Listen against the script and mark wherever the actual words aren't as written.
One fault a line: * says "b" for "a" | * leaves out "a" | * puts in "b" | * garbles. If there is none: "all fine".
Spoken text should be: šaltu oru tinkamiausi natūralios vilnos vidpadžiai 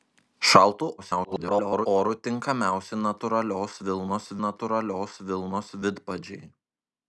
* garbles
* puts in "natūralios vilnos"